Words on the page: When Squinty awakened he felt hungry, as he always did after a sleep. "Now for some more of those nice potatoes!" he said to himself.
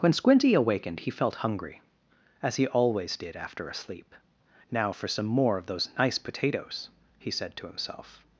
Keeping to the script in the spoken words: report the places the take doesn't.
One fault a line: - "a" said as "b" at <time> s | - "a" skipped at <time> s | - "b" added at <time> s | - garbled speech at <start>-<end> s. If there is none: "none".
none